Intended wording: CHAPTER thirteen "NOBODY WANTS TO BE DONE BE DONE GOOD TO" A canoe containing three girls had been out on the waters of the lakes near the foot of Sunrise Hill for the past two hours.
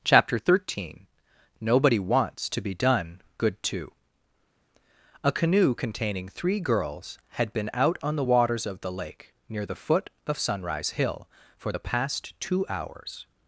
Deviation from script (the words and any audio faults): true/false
true